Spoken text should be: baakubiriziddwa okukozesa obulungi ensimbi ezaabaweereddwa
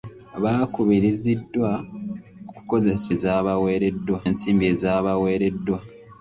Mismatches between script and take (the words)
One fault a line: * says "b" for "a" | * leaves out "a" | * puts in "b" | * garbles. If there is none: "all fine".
* says "ezaabaweereddwa" for "obulungi"